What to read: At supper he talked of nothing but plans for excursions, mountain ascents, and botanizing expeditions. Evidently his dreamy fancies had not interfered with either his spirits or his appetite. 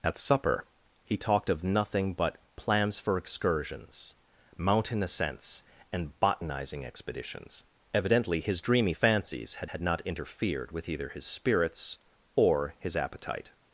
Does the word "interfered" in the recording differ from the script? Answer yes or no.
no